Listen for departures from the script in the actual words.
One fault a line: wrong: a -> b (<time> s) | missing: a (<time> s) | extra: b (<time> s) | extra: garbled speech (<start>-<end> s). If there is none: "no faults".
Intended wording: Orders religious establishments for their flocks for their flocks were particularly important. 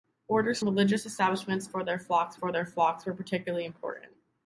no faults